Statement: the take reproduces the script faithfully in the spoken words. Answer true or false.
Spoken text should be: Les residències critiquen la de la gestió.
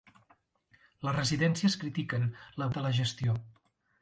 true